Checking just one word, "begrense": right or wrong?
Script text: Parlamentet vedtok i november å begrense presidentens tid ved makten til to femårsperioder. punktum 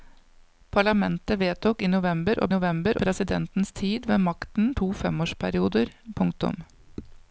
wrong